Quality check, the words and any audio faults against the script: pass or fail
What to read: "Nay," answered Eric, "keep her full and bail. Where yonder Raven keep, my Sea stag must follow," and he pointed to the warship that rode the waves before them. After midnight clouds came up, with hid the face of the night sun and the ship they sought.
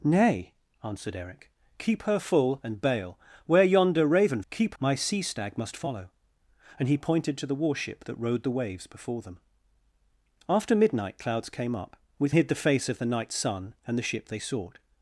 pass